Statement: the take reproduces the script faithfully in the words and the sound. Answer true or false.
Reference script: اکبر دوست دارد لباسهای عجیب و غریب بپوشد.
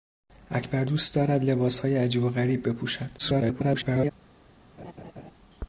false